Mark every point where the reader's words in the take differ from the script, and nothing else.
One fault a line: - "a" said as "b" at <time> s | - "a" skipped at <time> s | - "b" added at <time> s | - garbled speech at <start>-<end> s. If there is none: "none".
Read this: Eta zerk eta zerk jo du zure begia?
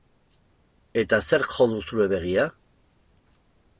- "eta zerk" skipped at 1.5 s